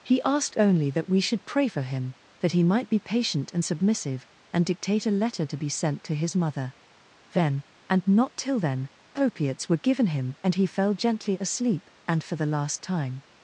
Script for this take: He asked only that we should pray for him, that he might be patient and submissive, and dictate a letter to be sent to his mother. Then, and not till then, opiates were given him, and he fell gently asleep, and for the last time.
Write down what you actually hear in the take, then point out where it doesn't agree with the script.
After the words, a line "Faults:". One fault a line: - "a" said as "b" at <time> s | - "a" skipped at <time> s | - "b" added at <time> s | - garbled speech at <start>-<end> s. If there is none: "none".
He asked only that we should pray for him, that he might be patient and submissive, and dictate a letter to be sent to his mother. Then, and not till then, opiates were given him, and he fell gently asleep, and for the last time.
Faults:
none